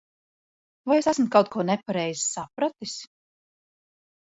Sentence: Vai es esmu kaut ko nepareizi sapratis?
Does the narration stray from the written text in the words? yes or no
no